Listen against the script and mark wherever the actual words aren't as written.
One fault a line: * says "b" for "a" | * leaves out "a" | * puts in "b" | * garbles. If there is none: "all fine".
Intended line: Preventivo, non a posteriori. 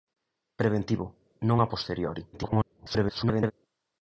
* garbles